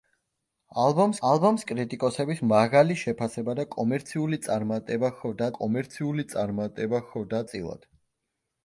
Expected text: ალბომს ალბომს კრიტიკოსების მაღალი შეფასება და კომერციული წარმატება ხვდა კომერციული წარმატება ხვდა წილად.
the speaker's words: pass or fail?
pass